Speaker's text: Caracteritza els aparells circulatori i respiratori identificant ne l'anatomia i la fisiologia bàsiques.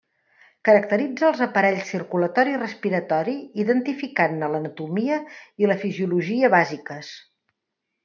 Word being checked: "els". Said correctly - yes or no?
yes